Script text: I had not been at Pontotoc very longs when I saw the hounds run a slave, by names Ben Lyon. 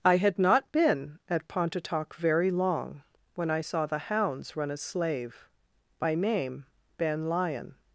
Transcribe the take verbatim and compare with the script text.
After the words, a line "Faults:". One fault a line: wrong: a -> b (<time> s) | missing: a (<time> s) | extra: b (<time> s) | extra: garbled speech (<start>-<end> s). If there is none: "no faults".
I had not been at Pontotoc very long when I saw the hounds run a slave, by name Ben Lyon.
Faults:
wrong: longs -> long (2.5 s)
wrong: names -> name (6.1 s)